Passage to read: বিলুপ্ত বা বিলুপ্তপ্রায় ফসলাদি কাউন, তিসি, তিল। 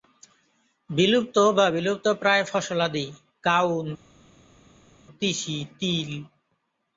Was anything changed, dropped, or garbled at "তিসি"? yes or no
no